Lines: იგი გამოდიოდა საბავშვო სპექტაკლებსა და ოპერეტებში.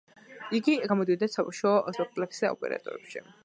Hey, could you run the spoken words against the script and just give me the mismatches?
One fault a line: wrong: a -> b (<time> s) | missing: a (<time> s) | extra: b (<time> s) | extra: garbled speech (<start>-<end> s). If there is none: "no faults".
no faults